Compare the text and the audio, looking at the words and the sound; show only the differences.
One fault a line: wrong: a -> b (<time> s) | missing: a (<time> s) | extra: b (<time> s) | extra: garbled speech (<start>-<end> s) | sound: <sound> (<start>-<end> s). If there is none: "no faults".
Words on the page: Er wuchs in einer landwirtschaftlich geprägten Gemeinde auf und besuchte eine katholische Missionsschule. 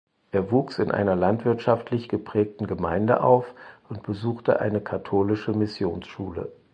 no faults